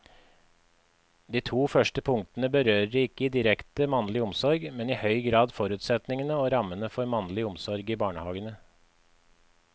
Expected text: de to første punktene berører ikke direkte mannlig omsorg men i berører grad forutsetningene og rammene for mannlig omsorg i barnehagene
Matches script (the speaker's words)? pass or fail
fail